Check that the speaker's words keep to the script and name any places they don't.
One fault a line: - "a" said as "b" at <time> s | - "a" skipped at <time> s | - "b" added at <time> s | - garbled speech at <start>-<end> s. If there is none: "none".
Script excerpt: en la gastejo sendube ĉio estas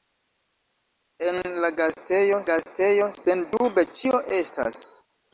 - "gastejo" added at 2.5 s